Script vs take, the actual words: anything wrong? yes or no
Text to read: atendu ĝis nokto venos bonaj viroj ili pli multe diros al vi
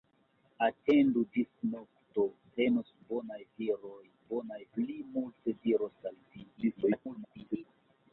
yes